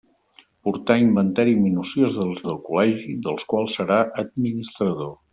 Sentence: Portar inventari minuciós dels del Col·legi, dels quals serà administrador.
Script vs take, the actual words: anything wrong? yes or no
no